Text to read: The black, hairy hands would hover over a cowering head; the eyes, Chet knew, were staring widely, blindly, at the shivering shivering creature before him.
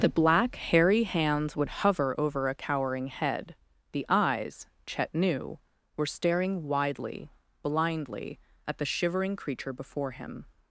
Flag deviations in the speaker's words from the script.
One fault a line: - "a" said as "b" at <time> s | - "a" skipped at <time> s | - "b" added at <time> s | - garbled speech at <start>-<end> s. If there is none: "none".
- "shivering" skipped at 9.3 s